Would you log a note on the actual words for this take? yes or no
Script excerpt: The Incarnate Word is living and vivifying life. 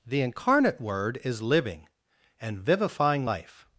no